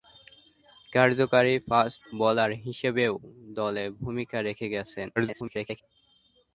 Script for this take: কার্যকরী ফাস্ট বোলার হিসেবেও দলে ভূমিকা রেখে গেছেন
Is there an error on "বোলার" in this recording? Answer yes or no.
no